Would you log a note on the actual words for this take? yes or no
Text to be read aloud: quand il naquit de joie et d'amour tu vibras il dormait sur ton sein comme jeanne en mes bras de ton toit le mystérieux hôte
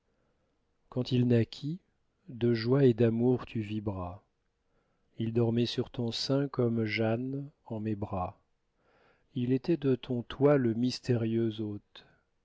yes